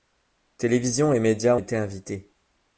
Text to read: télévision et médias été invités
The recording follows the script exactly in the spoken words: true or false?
true